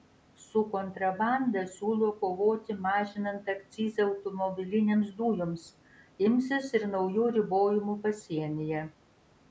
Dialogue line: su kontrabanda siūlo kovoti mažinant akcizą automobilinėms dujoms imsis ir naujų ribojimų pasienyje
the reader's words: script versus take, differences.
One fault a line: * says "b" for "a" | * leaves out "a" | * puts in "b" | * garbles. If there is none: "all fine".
all fine